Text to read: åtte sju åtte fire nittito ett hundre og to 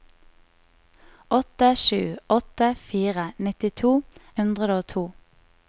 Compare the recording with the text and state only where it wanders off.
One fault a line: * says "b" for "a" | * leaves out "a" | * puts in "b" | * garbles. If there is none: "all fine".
* leaves out "ett"